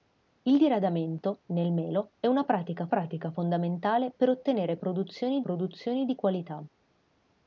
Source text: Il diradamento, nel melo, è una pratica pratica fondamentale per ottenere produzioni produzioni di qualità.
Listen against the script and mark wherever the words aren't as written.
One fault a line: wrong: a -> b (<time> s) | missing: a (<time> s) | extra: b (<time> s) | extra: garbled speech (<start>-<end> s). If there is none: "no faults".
no faults